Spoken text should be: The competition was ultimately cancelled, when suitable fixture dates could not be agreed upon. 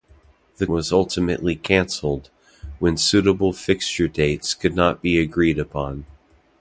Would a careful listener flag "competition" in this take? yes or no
yes